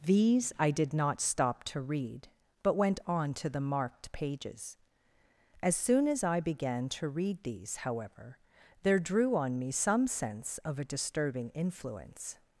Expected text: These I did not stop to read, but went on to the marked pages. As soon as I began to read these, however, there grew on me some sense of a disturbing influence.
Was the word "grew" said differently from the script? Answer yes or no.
yes